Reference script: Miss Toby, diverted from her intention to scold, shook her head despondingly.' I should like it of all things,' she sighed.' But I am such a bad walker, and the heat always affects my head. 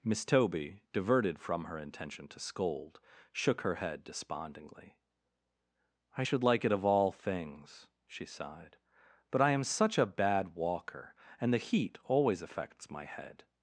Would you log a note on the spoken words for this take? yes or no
no